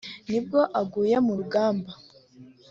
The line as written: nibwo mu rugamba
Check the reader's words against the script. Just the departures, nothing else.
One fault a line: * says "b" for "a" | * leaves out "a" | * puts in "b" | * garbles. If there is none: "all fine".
* puts in "aguye"